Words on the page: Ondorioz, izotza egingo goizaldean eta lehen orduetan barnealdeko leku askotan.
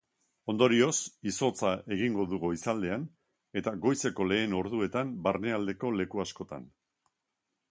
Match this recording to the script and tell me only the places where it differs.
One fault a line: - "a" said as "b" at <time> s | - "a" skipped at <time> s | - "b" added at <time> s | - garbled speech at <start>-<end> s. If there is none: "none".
- "du" added at 2.3 s
- "goizeko" added at 3.9 s